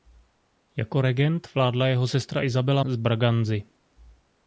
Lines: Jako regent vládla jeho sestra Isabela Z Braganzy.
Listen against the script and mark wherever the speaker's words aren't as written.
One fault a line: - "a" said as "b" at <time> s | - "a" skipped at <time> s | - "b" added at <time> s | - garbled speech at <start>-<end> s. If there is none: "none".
none